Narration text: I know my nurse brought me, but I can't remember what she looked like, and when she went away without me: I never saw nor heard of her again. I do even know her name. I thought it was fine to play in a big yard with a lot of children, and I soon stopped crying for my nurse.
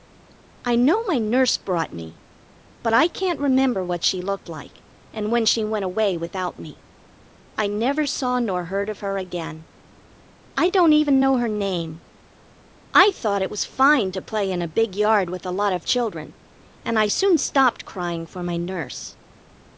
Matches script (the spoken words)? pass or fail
fail